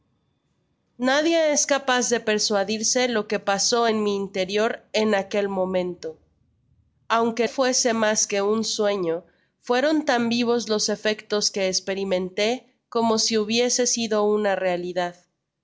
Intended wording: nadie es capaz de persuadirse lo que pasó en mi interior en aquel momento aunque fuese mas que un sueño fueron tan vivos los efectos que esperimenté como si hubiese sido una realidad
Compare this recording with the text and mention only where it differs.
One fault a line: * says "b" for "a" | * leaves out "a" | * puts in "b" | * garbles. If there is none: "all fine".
all fine